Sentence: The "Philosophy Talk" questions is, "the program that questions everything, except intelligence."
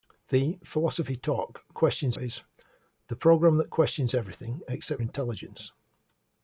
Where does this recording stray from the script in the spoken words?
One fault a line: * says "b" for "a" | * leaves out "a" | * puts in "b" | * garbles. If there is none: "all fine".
all fine